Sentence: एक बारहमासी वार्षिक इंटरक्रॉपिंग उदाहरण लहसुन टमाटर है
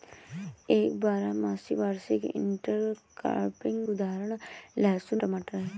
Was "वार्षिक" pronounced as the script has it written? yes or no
yes